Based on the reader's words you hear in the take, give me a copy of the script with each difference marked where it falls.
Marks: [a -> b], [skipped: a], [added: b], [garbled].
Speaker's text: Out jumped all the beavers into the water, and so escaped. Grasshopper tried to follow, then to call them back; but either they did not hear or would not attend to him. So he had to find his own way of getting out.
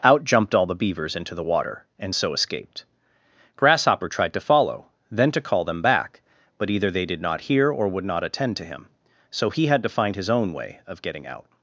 Out jumped all the beavers into the water, and so escaped. Grasshopper tried to follow, then to call them back; but either they did not hear or would not attend to him. So he had to find his own way of getting out.